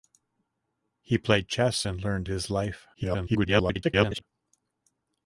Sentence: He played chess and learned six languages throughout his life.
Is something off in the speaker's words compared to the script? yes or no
yes